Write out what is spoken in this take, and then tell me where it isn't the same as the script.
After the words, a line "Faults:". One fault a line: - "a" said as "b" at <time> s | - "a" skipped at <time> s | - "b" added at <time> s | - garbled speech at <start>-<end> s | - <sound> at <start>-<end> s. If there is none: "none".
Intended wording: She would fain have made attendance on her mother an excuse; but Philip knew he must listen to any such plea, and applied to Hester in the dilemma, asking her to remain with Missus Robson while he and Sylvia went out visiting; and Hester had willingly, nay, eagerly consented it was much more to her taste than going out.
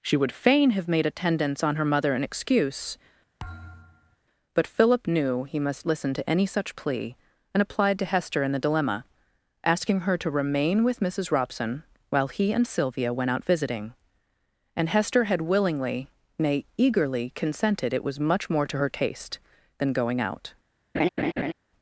She would fain have made attendance on her mother an excuse; but Philip knew he must listen to any such plea, and applied to Hester in the dilemma, asking her to remain with Missus Robson while he and Sylvia went out visiting; and Hester had willingly, nay, eagerly consented it was much more to her taste than going out.
Faults:
- thud at 3.4-4.2 s
- laugh at 20.9-21.5 s